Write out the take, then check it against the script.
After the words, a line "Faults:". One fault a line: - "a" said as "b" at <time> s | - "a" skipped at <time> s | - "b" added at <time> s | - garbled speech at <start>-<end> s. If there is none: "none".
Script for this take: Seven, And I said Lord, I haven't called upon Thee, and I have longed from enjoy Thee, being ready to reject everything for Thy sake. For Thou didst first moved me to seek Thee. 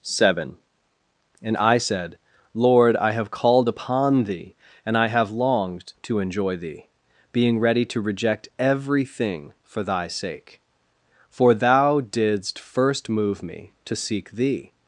Seven, And I said Lord, I have called upon Thee, and I have longed to enjoy Thee, being ready to reject everything for Thy sake. For Thou didst first move me to seek Thee.
Faults:
- "haven't" said as "have" at 3.1 s
- "from" said as "to" at 6.0 s
- "moved" said as "move" at 13.1 s